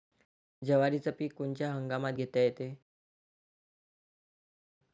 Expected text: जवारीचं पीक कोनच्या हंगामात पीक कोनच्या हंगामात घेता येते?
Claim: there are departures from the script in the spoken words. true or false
true